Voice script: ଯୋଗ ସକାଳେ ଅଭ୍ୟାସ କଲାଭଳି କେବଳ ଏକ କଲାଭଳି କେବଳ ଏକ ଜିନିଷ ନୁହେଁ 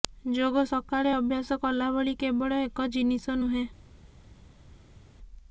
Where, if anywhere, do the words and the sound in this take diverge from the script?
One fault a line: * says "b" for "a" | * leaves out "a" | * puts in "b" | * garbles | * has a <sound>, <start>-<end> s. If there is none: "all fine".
* leaves out "କଲାଭଳି କେବଳ ଏକ"